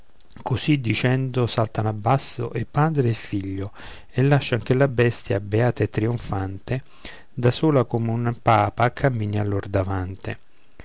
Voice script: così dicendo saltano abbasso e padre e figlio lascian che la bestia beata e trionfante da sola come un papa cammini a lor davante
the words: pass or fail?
fail